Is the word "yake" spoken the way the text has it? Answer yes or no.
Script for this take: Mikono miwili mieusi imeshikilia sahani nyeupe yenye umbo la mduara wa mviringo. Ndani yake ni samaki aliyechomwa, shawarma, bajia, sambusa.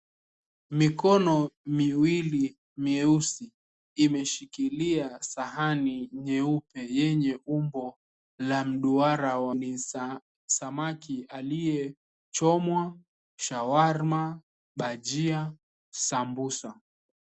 no